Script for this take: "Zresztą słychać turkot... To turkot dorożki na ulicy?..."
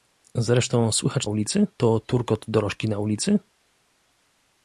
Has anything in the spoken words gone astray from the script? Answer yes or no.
yes